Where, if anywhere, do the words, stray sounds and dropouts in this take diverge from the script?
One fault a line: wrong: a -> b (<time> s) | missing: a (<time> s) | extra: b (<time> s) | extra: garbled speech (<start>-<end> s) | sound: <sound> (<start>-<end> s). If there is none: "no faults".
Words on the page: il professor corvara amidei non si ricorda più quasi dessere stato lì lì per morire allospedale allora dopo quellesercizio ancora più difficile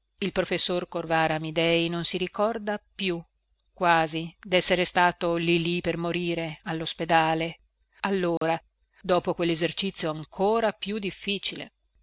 sound: dropout (8.4-8.4 s)